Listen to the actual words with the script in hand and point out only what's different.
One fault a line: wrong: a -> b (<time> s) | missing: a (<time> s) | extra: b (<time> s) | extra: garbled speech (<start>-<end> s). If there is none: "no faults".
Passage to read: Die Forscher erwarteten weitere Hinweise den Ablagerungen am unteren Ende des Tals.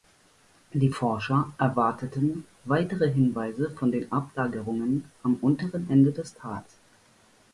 extra: von (3.7 s)